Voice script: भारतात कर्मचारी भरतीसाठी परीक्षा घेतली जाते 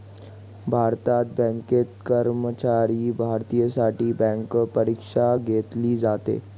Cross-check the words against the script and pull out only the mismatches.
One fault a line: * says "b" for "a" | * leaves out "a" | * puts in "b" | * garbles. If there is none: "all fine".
* puts in "बँकेत"
* puts in "बँक"